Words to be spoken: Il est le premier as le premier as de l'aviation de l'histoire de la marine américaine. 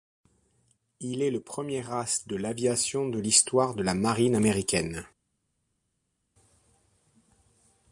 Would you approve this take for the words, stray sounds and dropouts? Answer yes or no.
no